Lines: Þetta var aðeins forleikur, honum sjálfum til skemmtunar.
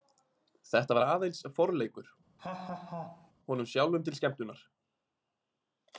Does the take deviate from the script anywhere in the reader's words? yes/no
no